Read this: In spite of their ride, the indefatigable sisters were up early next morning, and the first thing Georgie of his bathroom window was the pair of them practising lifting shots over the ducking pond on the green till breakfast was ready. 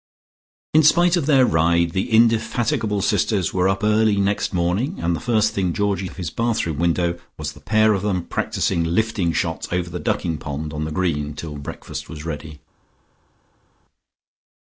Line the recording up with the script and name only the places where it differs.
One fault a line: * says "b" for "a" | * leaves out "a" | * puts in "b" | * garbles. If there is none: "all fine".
all fine